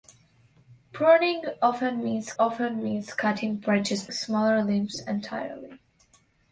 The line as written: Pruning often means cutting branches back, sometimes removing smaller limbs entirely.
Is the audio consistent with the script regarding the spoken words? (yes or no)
no